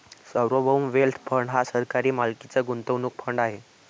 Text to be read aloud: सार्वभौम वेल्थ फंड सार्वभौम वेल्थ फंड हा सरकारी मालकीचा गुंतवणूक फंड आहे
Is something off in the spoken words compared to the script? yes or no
yes